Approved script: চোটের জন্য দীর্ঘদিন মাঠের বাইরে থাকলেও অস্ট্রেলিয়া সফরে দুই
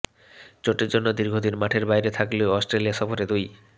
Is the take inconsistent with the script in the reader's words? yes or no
no